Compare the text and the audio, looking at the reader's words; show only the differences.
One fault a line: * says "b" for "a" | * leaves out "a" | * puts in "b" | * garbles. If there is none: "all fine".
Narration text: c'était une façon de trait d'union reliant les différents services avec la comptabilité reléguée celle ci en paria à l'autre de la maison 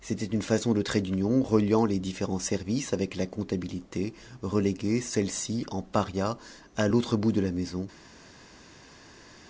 * puts in "bout"